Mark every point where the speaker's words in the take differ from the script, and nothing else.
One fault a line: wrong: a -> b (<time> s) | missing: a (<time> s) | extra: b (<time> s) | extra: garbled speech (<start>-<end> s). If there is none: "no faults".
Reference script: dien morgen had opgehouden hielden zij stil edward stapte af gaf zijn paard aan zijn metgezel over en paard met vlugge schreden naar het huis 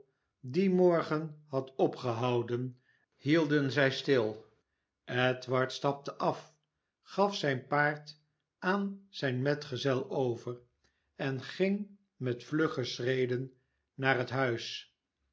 wrong: paard -> ging (11.4 s)